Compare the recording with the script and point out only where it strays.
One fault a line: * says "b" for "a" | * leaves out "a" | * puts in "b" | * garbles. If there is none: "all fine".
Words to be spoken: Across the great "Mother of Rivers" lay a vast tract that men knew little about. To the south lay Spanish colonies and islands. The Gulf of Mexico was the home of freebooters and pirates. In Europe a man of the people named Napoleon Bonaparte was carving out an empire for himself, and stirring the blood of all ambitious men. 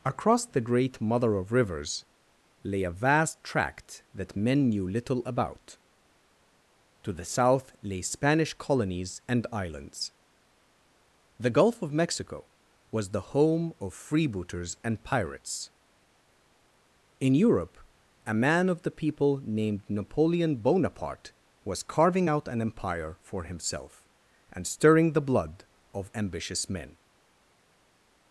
* leaves out "all"